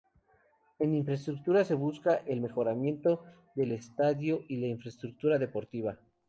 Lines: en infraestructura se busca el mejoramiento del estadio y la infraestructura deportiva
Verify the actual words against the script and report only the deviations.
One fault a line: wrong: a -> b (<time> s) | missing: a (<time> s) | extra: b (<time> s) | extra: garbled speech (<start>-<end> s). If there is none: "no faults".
no faults